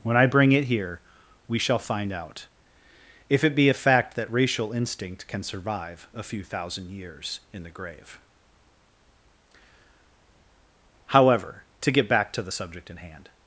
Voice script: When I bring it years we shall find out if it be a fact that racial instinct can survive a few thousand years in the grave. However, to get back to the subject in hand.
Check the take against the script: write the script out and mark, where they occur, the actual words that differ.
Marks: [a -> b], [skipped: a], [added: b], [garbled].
When I bring it [years -> here] we shall find out if it be a fact that racial instinct can survive a few thousand years in the grave. However, to get back to the subject in hand.